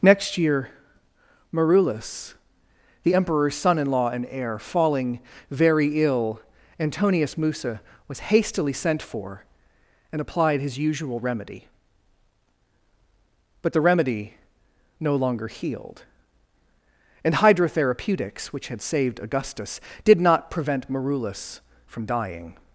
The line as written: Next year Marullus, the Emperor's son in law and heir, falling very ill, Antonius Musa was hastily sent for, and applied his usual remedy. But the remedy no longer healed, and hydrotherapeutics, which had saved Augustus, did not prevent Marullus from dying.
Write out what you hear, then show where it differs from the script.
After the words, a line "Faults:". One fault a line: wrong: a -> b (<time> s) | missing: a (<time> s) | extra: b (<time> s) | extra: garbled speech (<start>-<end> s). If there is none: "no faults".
Next year Marullus, the Emperor's son in law and heir, falling very ill, Antonius Musa was hastily sent for, and applied his usual remedy. But the remedy no longer healed, and hydrotherapeutics, which had saved Augustus, did not prevent Marullus from dying.
Faults:
no faults